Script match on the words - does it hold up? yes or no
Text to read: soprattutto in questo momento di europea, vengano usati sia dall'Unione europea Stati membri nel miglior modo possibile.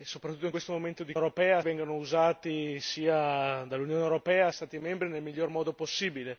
yes